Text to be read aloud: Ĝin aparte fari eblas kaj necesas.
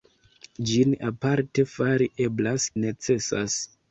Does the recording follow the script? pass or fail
fail